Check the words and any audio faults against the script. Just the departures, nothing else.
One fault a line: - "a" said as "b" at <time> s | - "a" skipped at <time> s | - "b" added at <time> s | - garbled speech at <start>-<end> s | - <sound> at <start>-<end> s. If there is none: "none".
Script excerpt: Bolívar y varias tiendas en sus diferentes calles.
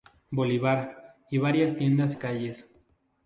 - "en sus diferentes" skipped at 2.1 s